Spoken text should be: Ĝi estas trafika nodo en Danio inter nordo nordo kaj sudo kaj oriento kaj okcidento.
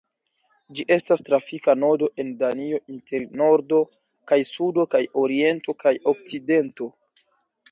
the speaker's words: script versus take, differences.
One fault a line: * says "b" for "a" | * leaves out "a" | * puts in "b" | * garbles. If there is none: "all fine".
* leaves out "nordo"